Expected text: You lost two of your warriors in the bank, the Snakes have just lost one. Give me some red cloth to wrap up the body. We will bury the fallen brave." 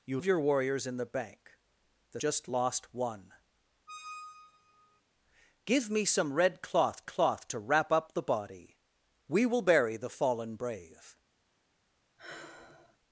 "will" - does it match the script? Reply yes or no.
yes